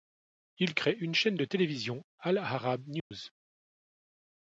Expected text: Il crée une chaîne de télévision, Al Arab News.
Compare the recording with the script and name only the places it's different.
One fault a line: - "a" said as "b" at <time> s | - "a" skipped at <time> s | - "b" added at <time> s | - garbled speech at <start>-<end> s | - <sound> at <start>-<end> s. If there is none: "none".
- dropout at 3.0-3.1 s